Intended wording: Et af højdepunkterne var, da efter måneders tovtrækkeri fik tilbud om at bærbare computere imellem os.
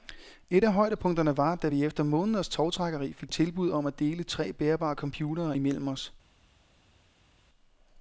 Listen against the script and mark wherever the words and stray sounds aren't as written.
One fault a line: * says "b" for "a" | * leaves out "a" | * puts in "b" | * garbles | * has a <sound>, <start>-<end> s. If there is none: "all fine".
* puts in "vi"
* puts in "dele tre"